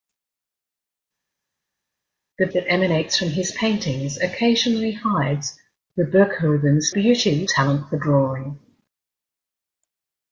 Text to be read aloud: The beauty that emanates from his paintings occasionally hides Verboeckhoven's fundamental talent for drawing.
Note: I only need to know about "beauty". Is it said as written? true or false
false